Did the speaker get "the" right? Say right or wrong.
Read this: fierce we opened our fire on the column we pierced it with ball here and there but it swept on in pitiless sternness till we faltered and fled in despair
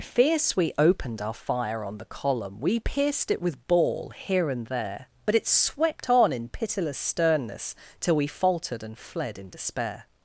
right